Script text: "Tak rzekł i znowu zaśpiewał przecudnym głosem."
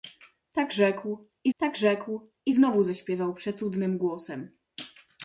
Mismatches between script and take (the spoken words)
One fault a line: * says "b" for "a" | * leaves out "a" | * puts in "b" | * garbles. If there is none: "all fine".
* puts in "tak rzekł i"